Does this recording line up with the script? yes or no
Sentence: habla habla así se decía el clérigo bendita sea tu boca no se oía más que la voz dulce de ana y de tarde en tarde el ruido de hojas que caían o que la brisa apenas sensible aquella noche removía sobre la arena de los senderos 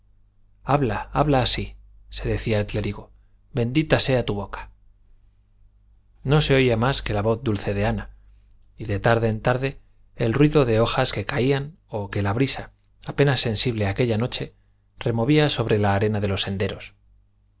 yes